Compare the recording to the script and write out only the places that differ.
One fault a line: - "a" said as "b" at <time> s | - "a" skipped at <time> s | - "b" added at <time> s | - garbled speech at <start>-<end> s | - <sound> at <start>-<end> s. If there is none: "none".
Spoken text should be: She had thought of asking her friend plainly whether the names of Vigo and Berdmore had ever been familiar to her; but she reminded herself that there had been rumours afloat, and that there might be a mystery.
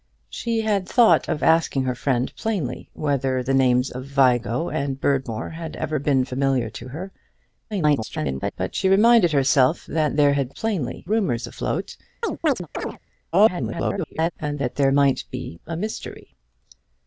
- garbled speech at 7.7-8.5 s
- "been" said as "plainly" at 10.5 s
- chirp at 12.2-13.0 s
- garbled speech at 13.3-14.3 s